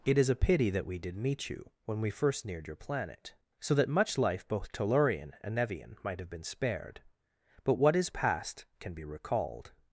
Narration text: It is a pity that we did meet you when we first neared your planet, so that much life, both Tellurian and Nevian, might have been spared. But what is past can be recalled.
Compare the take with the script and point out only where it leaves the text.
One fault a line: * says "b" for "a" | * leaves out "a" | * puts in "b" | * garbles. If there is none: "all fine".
all fine